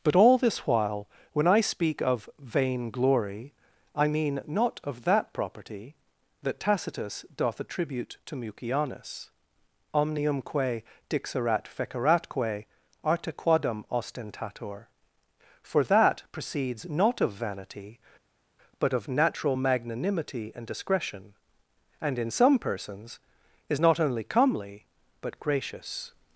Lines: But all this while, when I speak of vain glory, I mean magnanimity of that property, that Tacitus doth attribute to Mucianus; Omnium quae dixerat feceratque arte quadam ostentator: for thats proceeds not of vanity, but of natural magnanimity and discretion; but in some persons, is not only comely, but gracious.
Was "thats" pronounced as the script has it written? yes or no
no